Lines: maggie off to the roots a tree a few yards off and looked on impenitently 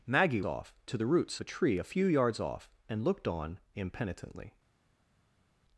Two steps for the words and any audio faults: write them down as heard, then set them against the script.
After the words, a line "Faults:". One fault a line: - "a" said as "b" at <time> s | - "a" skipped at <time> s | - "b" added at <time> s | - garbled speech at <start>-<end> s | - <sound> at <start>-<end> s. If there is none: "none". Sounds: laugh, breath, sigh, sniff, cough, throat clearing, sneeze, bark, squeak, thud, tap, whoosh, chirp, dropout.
maggie off to the roots a tree a few yards off and looked on impenitently
Faults:
none